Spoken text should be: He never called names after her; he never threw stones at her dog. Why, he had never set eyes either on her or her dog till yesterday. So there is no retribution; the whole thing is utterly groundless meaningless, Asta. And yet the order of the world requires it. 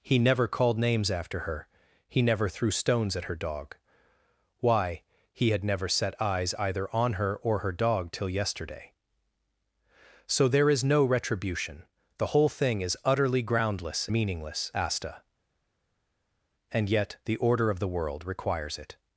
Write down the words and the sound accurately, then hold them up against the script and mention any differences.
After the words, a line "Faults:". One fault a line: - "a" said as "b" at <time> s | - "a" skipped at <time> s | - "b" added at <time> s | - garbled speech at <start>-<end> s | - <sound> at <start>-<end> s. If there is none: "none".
He never called names after her; he never threw stones at her dog. Why, he had never set eyes either on her or her dog till yesterday. So there is no retribution; the whole thing is utterly groundless meaningless, Asta. And yet the order of the world requires it.
Faults:
none